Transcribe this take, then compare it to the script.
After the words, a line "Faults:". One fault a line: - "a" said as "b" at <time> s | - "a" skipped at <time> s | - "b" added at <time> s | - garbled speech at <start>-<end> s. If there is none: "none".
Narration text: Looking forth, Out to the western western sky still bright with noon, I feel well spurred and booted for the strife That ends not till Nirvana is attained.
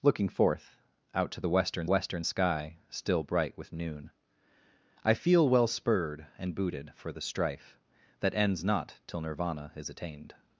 Looking forth, Out to the western western sky still bright with noon, I feel well spurred and booted for the strife That ends not till Nirvana is attained.
Faults:
none